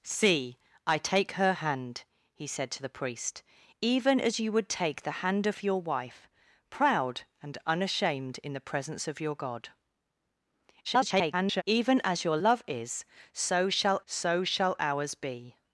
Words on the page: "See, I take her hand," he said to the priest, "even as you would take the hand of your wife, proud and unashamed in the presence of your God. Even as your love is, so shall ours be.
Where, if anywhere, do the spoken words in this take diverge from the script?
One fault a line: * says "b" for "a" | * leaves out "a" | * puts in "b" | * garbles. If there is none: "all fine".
* garbles
* puts in "so shall"